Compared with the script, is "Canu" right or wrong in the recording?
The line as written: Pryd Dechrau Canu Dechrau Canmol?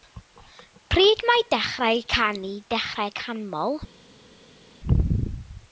right